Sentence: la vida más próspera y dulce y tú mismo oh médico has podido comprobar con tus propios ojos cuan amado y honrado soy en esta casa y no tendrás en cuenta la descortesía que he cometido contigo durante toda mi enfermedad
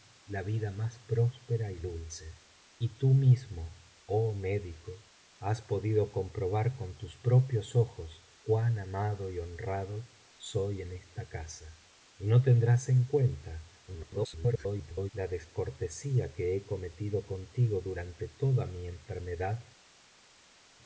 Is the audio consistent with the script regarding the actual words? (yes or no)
no